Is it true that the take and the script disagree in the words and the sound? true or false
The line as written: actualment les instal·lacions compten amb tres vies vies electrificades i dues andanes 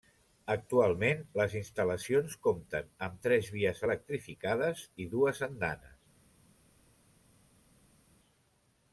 true